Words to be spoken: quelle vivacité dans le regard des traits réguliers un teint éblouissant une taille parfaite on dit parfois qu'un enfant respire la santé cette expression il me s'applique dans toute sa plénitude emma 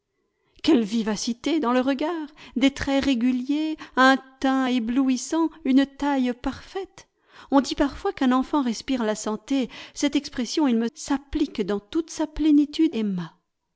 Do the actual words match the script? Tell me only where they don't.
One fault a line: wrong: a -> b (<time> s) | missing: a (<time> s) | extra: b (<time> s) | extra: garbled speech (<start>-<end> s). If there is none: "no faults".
no faults